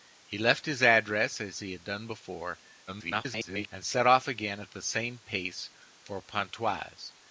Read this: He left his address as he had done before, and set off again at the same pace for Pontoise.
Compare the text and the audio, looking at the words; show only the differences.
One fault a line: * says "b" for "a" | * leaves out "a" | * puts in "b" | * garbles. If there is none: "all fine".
* garbles